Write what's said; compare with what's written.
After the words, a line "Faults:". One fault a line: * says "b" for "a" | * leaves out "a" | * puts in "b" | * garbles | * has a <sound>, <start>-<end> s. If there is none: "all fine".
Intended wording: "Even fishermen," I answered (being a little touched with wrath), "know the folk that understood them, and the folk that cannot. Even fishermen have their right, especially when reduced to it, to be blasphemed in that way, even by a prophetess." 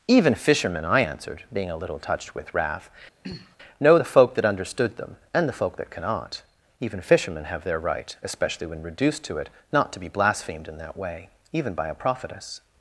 "Even fishermen," I answered (being a little touched with wrath), "know the folk that understood them, and the folk that cannot. Even fishermen have their right, especially when reduced to it, not to be blasphemed in that way, even by a prophetess."
Faults:
* has a throat clearing, 3.2-3.6 s
* puts in "not"